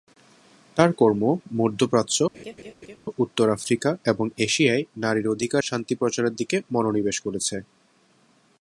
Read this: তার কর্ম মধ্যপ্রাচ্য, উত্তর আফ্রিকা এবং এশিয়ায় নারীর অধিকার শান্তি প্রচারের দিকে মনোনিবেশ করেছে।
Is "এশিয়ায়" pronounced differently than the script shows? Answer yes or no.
no